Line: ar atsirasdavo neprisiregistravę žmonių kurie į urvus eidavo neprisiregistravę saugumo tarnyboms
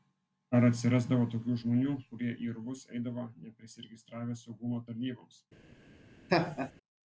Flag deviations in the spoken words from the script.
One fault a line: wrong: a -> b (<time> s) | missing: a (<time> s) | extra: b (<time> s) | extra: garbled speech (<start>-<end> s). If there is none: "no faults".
wrong: neprisiregistravę -> tokių (1.3 s)